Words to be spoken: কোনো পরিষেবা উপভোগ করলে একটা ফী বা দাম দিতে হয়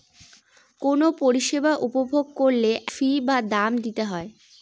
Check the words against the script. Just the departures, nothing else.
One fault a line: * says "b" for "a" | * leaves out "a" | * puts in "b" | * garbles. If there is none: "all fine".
* leaves out "একটা"